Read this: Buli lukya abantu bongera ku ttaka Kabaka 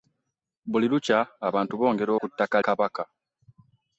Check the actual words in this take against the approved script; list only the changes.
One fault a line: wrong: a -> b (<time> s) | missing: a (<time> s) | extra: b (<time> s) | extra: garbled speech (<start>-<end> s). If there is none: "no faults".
no faults